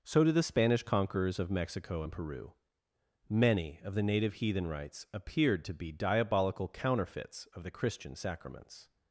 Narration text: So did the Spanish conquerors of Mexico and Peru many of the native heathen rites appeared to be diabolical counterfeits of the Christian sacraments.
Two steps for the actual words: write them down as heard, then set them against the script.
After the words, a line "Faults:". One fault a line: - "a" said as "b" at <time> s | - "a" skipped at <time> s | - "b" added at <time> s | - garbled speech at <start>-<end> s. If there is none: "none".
So did the Spanish conquerors of Mexico and Peru many of the native heathen rites appeared to be diabolical counterfeits of the Christian sacraments.
Faults:
none